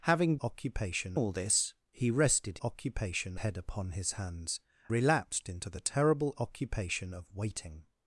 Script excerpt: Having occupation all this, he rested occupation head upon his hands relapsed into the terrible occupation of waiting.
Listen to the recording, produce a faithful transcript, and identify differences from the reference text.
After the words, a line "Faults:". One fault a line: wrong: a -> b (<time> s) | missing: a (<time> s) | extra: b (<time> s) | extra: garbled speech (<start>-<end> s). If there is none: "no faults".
Having occupation all this, he rested occupation head upon his hands relapsed into the terrible occupation of waiting.
Faults:
no faults